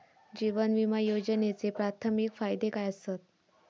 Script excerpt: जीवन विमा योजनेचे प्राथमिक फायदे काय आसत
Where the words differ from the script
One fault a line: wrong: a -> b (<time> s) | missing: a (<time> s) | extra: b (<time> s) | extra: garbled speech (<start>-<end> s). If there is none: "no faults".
no faults